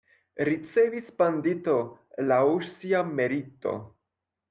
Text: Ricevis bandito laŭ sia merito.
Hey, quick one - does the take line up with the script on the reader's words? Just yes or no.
yes